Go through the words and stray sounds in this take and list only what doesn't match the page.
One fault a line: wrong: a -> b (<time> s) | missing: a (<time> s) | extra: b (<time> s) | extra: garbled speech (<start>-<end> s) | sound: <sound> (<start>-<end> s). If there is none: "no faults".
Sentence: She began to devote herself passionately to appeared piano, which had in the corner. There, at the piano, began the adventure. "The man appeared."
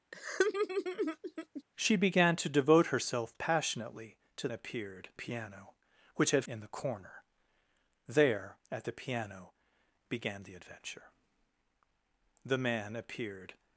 sound: laugh (0.1-1.6 s)